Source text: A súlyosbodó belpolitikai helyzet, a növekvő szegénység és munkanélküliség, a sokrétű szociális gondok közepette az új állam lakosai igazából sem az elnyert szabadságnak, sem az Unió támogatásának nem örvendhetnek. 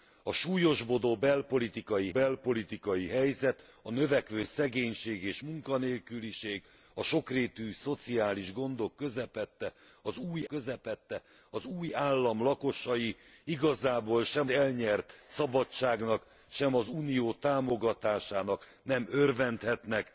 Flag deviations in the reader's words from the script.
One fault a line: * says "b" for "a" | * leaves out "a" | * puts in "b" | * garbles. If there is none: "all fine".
* puts in "belpolitikai"
* puts in "közepette az új"
* leaves out "az"